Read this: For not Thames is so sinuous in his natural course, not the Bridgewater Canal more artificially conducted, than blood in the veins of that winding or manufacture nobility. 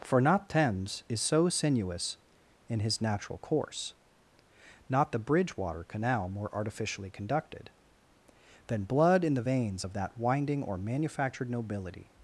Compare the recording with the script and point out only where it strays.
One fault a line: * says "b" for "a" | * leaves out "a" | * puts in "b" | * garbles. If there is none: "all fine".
* says "manufactured" for "manufacture"